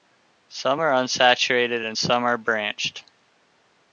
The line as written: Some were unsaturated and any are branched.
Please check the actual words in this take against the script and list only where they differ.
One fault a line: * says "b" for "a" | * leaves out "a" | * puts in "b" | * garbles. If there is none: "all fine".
* says "are" for "were"
* says "some" for "any"